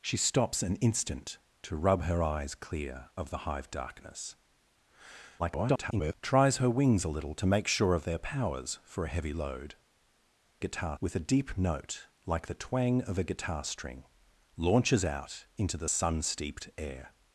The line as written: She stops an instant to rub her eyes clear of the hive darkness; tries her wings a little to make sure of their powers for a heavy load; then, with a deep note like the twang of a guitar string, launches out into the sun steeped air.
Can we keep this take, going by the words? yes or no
no